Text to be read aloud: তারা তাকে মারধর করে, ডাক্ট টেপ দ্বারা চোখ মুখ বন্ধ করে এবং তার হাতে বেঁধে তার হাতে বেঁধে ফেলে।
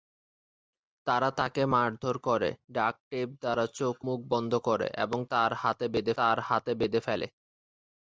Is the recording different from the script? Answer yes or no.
no